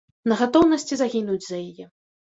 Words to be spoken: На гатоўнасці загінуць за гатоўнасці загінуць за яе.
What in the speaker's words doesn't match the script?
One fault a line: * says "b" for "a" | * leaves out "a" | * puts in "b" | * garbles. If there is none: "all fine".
* leaves out "гатоўнасці загінуць за"